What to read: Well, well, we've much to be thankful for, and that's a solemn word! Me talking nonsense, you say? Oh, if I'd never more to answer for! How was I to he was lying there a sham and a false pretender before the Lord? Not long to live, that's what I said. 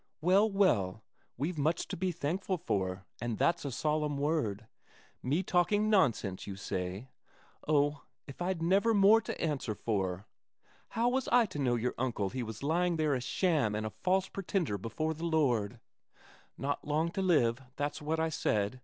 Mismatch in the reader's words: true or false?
true